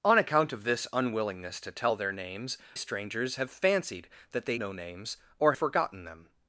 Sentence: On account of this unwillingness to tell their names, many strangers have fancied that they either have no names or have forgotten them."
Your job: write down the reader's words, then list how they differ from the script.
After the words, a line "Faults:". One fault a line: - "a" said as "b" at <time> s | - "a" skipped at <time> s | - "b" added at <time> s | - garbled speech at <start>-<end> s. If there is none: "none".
On account of this unwillingness to tell their names, strangers have fancied that they no names or forgotten them."
Faults:
- "many" skipped at 2.6 s
- "either have" skipped at 4.5 s
- "have" skipped at 5.5 s